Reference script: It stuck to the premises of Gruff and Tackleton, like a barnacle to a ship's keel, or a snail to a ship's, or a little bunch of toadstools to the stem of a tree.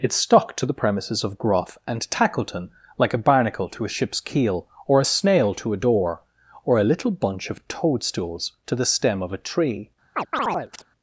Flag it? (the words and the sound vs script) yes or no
yes